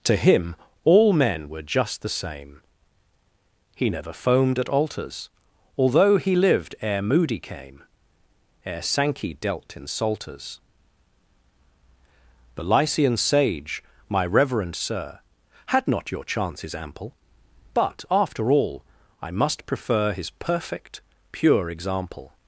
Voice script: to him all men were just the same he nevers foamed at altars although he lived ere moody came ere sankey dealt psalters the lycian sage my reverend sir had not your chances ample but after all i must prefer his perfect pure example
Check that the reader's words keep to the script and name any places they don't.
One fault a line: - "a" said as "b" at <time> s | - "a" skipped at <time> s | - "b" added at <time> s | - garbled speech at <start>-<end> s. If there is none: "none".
- "nevers" said as "never" at 3.9 s
- "in" added at 9.8 s